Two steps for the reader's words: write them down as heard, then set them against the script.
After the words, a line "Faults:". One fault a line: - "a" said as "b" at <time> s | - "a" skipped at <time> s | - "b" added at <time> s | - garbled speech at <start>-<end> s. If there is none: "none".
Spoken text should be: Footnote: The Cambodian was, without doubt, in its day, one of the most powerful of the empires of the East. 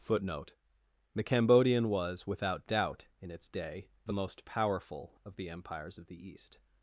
Footnote: The Cambodian was, without doubt, in its day, the most powerful of the empires of the East.
Faults:
- "one of" skipped at 3.9 s